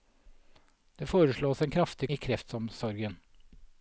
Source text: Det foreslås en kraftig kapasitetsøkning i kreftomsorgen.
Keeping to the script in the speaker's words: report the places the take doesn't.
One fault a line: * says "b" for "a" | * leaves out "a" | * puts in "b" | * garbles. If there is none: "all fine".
* leaves out "kapasitetsøkning"